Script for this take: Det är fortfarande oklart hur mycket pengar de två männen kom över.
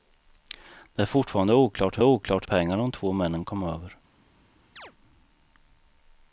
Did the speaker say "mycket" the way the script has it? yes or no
no